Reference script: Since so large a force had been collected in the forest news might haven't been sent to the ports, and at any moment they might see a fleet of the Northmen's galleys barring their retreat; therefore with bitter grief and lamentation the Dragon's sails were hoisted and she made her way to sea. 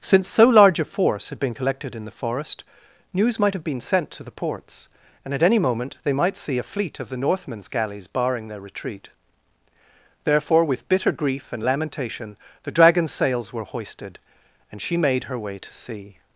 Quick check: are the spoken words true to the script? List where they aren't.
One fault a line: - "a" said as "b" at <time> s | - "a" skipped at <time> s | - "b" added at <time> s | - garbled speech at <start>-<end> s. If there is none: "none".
- "haven't" said as "have" at 3.5 s